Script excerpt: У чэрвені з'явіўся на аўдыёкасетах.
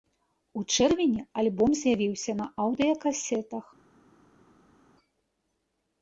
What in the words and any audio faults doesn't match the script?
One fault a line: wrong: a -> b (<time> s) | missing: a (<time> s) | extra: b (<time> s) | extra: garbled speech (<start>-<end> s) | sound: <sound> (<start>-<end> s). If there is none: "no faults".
extra: альбом (1.4 s)